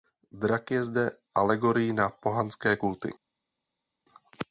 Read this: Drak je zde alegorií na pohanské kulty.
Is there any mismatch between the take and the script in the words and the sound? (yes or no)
no